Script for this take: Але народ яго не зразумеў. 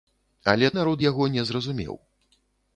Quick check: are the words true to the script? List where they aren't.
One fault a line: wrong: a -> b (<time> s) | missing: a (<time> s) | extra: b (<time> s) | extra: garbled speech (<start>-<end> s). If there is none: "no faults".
no faults